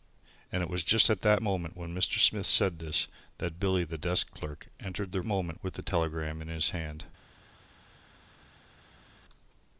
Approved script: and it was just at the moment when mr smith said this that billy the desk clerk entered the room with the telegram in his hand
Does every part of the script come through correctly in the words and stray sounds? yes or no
no